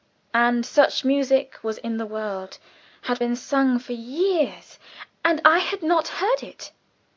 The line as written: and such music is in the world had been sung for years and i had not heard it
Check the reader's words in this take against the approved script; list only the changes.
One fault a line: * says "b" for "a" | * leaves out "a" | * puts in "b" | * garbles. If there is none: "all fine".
* says "was" for "is"